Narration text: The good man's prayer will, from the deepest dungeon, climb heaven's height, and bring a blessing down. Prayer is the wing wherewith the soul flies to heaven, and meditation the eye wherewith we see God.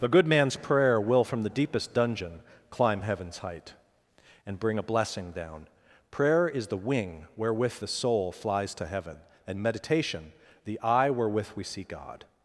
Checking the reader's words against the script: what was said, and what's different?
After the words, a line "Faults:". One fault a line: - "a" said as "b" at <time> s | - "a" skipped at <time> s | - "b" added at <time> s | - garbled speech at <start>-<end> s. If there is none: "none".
The good man's prayer will, from the deepest dungeon, climb heaven's height, and bring a blessing down. Prayer is the wing wherewith the soul flies to heaven, and meditation the eye wherewith we see God.
Faults:
none